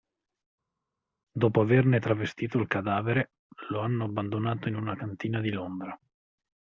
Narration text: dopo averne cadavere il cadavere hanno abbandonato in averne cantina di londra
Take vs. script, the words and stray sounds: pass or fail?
fail